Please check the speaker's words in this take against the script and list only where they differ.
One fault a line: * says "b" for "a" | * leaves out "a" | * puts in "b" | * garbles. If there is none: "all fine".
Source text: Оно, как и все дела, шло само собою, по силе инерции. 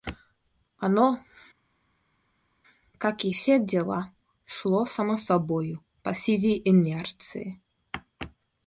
all fine